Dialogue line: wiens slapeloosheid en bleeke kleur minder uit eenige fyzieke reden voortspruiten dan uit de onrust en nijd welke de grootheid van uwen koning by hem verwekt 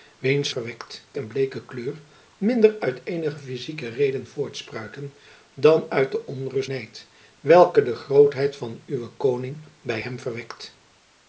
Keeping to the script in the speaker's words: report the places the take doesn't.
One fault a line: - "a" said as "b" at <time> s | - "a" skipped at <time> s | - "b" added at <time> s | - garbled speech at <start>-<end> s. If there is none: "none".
- "slapeloosheid" said as "verwekt" at 0.5 s
- "en" skipped at 6.7 s